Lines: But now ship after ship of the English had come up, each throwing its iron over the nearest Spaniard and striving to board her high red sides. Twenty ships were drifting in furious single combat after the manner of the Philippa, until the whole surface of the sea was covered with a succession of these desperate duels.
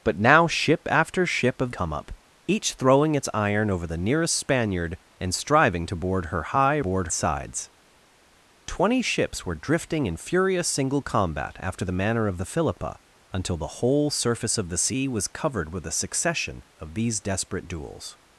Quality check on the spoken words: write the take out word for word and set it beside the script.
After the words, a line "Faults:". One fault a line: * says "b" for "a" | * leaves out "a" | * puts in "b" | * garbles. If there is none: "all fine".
But now ship after ship of come up, each throwing its iron over the nearest Spaniard and striving to board her high board sides. Twenty ships were drifting in furious single combat after the manner of the Philippa, until the whole surface of the sea was covered with a succession of these desperate duels.
Faults:
* leaves out "the English had"
* says "board" for "red"